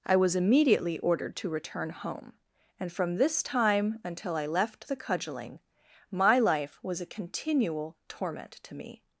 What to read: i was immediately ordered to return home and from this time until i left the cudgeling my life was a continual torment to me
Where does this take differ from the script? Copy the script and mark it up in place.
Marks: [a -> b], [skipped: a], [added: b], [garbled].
i was immediately ordered to return home and from this time until i left the cudgeling my life was a continual torment to me